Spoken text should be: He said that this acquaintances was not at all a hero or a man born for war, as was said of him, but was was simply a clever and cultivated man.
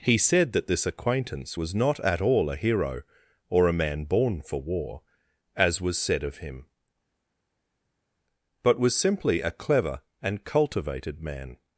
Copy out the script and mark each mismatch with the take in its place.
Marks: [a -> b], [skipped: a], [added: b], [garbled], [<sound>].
He said that this [acquaintances -> acquaintance] was not at all a hero or a man born for war, as was said of him, but was [skipped: was] simply a clever and cultivated man.